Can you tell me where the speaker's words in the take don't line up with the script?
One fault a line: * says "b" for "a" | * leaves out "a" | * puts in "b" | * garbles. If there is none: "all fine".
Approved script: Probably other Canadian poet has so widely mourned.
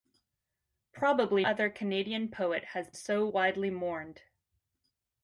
all fine